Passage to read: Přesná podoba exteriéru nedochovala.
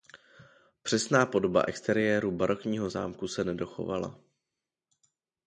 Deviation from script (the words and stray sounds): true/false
true